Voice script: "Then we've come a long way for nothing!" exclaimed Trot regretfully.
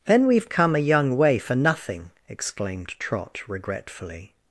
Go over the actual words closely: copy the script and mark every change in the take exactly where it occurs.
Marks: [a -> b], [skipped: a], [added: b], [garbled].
"Then we've come a [long -> young] way for nothing!" exclaimed Trot regretfully.